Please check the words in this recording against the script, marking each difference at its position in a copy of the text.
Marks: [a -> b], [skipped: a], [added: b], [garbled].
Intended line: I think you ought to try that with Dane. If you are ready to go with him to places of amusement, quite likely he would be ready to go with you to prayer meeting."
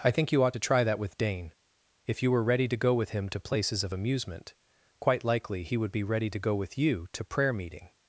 I think you ought to try that with Dane. If you [are -> were] ready to go with him to places of amusement, quite likely he would be ready to go with you to prayer meeting."